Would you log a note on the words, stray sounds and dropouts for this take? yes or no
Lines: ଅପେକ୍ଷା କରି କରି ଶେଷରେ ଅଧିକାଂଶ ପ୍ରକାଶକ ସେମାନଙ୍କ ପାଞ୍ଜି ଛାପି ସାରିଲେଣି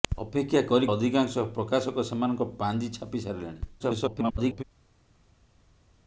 yes